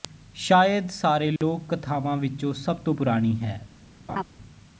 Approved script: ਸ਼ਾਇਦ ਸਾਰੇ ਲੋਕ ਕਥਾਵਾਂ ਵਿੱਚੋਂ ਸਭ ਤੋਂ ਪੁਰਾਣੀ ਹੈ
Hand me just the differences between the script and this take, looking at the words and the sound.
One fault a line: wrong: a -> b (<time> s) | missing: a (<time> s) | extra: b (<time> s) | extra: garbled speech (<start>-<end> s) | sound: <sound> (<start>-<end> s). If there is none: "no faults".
sound: dropout (1.4-1.4 s)
sound: laugh (4.1-4.2 s)